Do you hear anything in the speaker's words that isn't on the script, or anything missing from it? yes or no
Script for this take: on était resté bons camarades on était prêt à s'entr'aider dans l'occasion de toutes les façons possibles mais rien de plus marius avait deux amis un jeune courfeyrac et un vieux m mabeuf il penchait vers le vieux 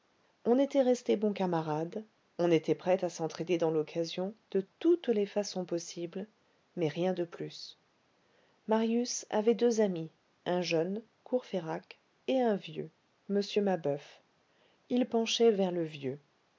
no